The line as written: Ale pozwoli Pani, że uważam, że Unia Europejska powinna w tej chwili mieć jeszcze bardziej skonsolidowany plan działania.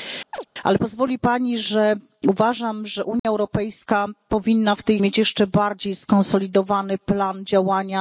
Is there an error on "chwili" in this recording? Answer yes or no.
yes